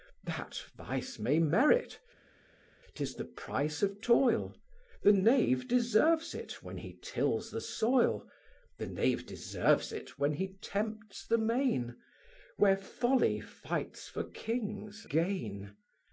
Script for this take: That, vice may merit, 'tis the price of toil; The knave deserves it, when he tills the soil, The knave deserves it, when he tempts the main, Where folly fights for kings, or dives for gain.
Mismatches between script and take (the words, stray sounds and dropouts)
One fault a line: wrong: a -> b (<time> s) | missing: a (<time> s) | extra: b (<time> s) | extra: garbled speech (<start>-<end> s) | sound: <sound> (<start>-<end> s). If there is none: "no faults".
missing: or dives for (15.0 s)